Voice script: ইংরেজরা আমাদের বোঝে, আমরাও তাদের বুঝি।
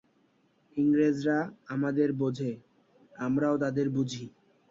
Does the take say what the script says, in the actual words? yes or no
yes